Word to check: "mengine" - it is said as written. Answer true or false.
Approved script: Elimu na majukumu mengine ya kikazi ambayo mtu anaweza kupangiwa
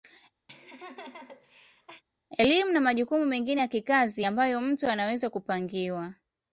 true